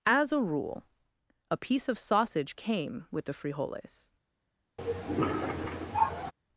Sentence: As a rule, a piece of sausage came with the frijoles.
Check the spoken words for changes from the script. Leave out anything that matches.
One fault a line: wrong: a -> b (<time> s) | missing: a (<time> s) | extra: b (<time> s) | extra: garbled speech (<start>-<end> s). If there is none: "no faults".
no faults